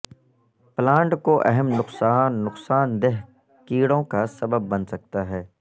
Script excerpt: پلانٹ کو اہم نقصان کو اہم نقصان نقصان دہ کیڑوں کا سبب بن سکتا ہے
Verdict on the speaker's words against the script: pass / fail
fail